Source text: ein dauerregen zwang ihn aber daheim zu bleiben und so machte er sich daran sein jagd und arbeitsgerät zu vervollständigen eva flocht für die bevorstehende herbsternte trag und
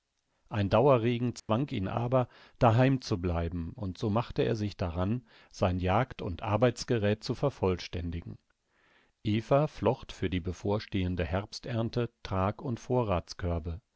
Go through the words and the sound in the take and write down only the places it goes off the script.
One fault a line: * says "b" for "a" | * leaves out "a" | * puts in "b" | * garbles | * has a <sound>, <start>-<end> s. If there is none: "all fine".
* has a dropout, 1.4-1.5 s